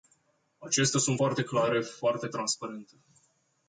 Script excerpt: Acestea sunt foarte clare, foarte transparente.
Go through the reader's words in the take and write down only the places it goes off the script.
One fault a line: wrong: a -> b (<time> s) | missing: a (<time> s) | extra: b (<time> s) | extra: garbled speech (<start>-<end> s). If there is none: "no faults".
no faults